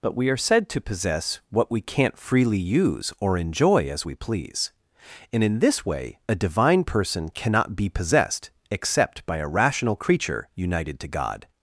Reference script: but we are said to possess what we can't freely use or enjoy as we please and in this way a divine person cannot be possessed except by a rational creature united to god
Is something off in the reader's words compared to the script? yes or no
no